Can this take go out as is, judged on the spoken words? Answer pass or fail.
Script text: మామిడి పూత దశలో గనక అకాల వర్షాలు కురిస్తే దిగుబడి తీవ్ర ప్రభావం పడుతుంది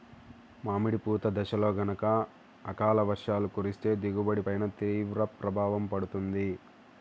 fail